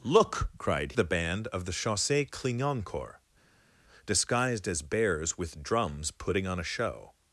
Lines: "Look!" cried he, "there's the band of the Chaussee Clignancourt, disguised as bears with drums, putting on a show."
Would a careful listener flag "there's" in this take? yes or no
yes